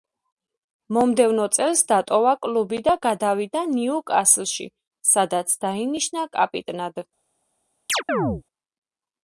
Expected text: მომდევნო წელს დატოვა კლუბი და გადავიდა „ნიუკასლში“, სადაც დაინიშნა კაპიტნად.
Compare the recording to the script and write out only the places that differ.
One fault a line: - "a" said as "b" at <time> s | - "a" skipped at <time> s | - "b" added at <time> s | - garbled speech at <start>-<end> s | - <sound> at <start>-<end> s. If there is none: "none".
- chirp at 7.9-8.4 s